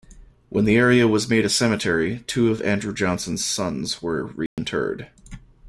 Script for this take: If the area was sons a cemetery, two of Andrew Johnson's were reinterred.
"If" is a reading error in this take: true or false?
true